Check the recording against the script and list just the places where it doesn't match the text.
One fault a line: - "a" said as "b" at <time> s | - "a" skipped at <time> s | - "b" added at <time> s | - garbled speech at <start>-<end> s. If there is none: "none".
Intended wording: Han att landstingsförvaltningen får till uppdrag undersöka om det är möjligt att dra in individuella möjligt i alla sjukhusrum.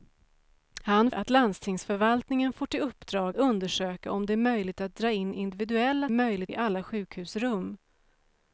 none